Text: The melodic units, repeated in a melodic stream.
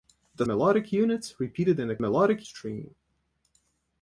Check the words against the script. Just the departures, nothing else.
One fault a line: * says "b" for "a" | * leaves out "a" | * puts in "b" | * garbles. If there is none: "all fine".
all fine